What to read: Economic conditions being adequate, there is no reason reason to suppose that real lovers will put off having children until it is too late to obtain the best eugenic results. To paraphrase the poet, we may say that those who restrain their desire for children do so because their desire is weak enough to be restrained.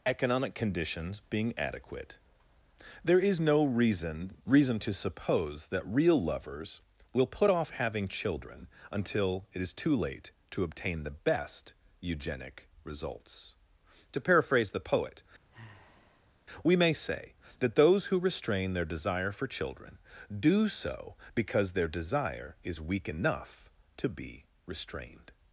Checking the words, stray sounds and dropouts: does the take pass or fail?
fail